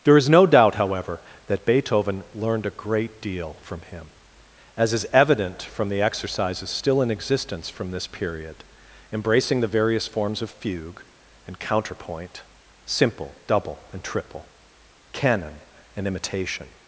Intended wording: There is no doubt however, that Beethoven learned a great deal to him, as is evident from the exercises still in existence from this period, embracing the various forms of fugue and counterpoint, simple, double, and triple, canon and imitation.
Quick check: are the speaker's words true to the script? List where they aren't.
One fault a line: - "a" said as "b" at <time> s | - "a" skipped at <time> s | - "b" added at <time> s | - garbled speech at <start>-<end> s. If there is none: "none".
- "to" said as "from" at 3.6 s